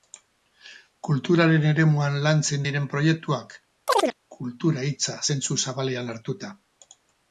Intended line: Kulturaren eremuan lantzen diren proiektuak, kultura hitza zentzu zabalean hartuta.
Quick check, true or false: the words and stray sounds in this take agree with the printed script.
false